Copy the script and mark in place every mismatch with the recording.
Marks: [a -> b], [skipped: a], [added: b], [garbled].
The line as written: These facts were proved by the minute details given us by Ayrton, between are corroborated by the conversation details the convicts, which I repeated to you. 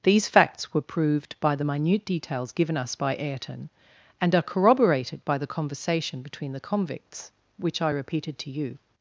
These facts were proved by the minute details given us by Ayrton, [between -> and] are corroborated by the conversation [details -> between] the convicts, which I repeated to you.